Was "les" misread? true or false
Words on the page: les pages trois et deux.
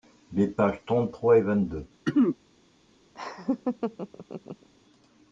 false